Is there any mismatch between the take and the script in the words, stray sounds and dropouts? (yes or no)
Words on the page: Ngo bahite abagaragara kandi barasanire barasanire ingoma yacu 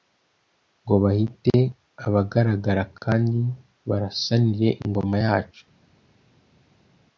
yes